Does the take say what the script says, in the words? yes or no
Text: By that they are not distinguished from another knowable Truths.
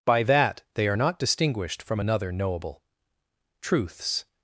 yes